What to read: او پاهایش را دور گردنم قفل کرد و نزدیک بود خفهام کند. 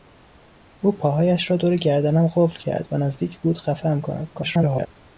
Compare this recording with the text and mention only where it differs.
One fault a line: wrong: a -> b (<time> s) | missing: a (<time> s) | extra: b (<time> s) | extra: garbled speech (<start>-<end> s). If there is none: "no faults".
extra: garbled speech (4.3-4.9 s)